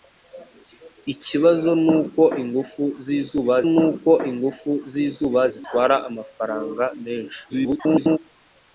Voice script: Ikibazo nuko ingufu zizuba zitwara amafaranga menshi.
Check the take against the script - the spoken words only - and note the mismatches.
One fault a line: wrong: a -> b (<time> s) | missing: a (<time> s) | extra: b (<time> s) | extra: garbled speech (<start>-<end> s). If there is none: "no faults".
extra: nuko ingufu zizuba (3.7 s)
extra: garbled speech (7.5-8.2 s)